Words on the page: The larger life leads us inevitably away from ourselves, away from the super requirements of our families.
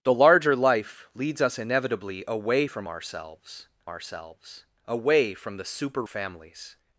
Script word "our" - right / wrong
wrong